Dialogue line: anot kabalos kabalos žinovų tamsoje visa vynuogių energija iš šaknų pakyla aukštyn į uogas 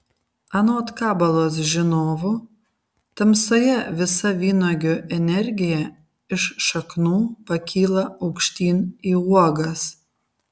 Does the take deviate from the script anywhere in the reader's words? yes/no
yes